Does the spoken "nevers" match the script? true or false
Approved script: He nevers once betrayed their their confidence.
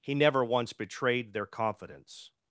false